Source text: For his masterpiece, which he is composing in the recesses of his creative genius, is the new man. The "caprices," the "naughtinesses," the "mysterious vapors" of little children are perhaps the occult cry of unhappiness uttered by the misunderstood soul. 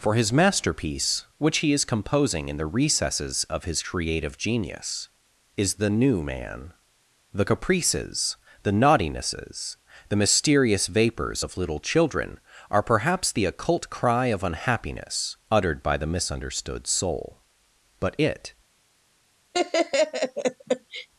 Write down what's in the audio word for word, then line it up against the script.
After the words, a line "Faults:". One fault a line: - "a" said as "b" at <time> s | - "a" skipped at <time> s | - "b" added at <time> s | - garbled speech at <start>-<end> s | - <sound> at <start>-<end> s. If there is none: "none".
For his masterpiece, which he is composing in the recesses of his creative genius, is the new man. The "caprices," the "naughtinesses," the "mysterious vapors" of little children are perhaps the occult cry of unhappiness uttered by the misunderstood soul. But it
Faults:
- "But it" added at 18.0 s
- laugh at 19.5-21.1 s